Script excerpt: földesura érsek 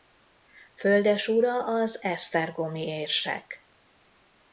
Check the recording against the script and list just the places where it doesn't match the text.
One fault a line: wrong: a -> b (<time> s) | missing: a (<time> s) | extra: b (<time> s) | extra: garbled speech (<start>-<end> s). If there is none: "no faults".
extra: az esztergomi (1.6 s)